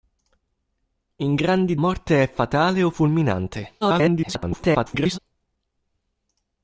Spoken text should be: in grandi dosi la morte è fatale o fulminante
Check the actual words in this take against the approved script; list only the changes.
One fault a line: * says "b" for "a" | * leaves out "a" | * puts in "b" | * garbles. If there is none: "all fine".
* leaves out "dosi la"
* garbles